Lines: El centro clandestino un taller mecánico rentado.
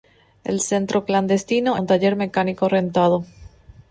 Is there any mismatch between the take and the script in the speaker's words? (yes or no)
no